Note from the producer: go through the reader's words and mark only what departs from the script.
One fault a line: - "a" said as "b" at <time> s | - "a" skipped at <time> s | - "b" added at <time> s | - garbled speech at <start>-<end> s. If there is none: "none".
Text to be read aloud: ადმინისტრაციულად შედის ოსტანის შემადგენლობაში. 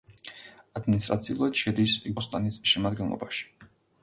none